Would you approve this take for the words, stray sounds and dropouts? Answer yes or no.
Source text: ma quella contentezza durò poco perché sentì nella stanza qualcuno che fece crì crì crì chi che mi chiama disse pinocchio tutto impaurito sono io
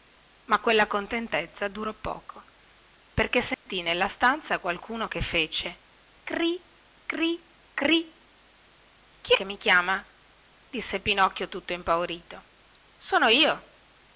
no